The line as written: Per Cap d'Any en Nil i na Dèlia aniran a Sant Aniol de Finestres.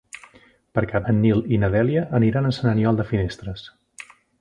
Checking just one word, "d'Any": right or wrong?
wrong